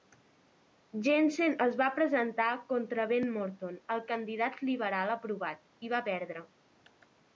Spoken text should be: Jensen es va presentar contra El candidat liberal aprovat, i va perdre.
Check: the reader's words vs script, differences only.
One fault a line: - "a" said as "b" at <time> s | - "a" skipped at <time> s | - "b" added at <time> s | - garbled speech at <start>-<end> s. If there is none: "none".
- "Ben Morton" added at 3.1 s